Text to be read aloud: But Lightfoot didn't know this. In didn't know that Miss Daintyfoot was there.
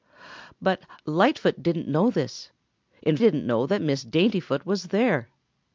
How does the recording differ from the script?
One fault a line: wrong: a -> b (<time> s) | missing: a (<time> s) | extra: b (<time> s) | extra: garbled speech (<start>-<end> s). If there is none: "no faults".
no faults